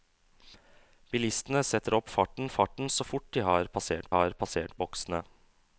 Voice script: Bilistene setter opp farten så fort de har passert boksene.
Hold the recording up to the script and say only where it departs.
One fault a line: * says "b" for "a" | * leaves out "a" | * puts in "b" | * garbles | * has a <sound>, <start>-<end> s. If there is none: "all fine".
* puts in "farten"
* puts in "har passert"